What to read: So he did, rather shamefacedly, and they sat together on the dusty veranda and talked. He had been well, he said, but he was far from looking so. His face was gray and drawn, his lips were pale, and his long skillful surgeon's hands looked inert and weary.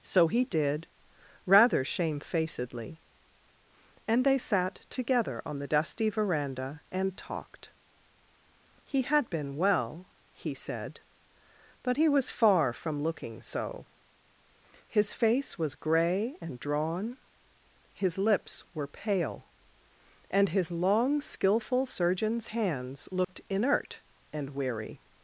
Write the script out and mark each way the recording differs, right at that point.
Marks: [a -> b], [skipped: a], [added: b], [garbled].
So he did, rather shamefacedly, and they sat together on the dusty veranda and talked. He had been well, he said, but he was far from looking so. His face was gray and drawn, his lips were pale, and his long skillful surgeon's hands looked inert and weary.